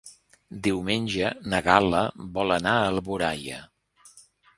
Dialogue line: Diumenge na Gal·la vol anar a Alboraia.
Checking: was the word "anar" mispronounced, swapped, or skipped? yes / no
no